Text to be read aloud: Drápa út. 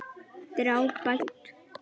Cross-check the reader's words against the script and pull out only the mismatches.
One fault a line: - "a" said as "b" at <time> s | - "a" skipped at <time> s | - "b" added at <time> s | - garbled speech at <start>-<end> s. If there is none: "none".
none